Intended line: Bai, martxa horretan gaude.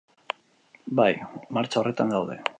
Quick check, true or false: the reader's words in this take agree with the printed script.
true